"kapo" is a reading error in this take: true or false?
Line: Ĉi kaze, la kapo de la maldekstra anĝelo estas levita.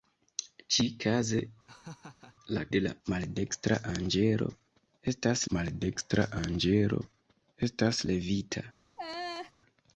true